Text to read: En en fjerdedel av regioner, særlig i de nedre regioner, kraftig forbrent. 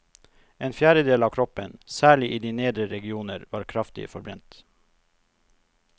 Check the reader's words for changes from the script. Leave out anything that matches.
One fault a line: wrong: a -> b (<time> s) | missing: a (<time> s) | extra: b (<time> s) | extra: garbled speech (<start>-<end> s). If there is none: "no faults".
missing: en (0.7 s)
wrong: regioner -> kroppen (1.3 s)
extra: var (3.5 s)